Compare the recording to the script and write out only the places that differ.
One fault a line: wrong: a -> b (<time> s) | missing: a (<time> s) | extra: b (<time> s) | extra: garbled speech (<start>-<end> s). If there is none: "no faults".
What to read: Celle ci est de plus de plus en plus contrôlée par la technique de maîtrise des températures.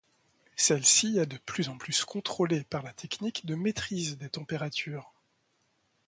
missing: de plus (1.7 s)